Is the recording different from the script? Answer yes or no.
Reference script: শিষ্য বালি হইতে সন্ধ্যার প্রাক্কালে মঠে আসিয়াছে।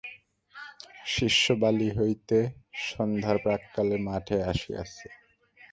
no